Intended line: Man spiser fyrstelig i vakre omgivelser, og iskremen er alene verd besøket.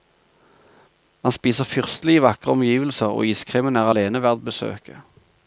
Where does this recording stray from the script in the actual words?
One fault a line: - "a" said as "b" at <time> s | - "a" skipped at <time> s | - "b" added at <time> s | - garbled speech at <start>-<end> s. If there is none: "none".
none